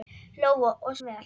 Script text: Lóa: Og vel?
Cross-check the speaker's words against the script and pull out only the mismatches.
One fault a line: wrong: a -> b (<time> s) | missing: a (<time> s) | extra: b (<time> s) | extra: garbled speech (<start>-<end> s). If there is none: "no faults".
no faults